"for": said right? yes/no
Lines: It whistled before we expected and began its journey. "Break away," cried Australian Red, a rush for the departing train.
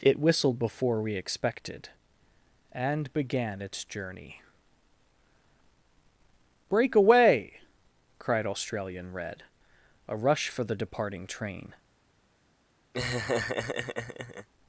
yes